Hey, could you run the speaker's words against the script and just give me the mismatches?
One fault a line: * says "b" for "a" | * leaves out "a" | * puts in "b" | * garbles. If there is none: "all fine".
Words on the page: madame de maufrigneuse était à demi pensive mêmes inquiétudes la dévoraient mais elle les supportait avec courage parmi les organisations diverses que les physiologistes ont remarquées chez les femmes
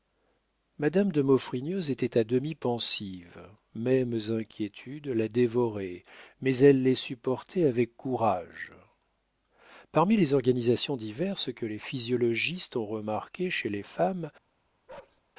all fine